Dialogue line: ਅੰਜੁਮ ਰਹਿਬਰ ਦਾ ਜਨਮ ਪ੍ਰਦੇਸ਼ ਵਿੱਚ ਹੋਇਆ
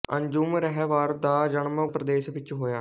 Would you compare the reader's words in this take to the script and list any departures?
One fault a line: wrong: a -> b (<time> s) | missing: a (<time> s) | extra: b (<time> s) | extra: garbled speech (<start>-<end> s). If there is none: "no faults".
no faults